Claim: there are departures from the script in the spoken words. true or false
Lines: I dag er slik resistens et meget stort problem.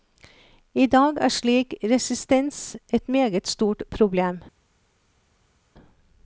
false